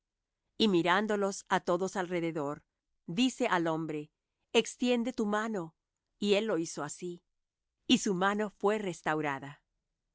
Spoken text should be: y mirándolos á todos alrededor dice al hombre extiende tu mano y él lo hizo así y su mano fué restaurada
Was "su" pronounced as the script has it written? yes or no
yes